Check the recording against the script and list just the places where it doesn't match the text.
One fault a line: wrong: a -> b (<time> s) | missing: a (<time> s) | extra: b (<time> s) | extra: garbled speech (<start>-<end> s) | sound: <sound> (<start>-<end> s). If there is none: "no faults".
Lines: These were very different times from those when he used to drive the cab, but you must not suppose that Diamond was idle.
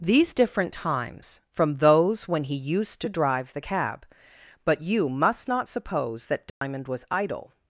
missing: were very (0.3 s)
sound: dropout (6.5-6.6 s)